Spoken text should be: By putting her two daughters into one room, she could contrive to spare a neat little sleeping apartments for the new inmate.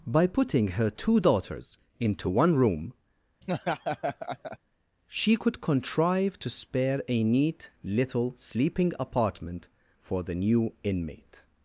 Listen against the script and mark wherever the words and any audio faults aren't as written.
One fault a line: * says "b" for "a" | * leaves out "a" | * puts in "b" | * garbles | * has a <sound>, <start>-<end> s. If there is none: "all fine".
* has a laugh, 3.4-4.6 s
* says "apartment" for "apartments"